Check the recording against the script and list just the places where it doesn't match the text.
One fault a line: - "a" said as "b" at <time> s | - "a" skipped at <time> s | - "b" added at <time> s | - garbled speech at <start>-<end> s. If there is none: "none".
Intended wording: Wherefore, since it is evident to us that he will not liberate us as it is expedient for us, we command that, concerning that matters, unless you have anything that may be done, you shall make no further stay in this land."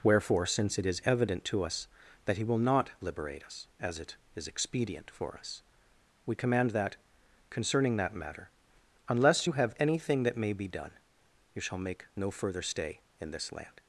- "matters" said as "matter" at 8.2 s